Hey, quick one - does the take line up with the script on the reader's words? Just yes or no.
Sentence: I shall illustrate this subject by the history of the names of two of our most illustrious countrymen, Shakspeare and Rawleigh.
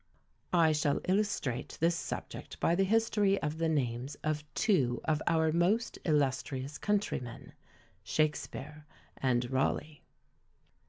yes